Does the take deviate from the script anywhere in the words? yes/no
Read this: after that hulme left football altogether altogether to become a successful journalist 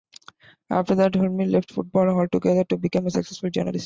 yes